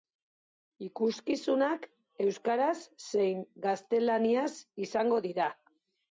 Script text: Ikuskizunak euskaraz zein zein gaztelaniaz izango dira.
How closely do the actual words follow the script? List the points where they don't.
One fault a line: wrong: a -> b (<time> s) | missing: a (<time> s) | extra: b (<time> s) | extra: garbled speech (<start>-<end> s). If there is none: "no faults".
missing: zein (3.4 s)